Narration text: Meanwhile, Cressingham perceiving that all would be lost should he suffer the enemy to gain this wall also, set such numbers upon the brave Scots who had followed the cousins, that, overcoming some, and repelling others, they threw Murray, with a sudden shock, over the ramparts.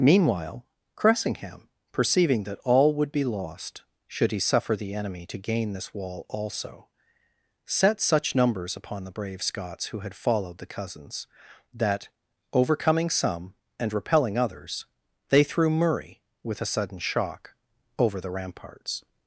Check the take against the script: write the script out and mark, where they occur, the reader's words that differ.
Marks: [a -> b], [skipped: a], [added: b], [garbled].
Meanwhile, Cressingham perceiving that all would be lost should he suffer the enemy to gain this wall also, set such numbers upon the brave Scots who had followed the cousins, that, overcoming some, and repelling others, they threw Murray, with a sudden shock, over the ramparts.